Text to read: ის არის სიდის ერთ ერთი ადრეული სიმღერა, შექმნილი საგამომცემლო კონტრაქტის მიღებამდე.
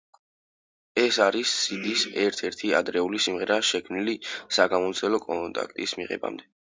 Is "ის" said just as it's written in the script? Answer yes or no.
no